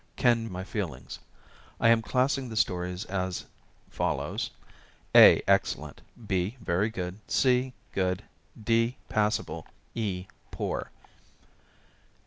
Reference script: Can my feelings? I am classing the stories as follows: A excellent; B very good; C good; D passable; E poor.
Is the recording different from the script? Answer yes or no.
no